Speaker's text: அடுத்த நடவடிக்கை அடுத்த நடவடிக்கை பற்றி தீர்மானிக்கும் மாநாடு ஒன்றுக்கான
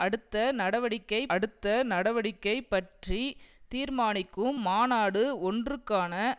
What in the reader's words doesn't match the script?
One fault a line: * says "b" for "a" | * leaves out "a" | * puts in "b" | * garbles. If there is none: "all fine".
all fine